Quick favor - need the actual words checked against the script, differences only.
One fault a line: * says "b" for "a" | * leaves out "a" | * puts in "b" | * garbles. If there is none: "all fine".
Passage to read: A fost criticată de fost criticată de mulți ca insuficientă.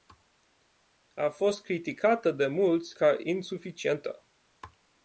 * leaves out "fost criticată de"